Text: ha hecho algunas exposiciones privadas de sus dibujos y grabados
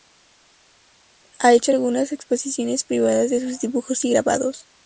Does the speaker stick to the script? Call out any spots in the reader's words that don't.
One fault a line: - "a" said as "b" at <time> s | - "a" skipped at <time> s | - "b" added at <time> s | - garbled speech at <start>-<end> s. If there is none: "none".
none